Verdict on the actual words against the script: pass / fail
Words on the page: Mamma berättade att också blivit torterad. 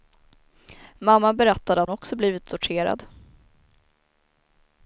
pass